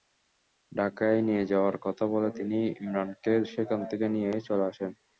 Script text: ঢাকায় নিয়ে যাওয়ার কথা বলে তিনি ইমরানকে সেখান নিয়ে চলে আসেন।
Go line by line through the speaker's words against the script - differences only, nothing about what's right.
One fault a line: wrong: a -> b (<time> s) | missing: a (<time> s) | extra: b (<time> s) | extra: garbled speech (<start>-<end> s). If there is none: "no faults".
extra: থেকে (3.9 s)